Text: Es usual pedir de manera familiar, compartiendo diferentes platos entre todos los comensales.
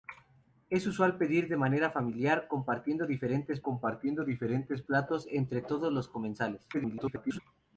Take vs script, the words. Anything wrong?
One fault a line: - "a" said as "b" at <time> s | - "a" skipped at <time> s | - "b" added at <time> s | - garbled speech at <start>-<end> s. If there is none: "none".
- "compartiendo diferentes" added at 3.6 s
- garbled speech at 6.7-7.4 s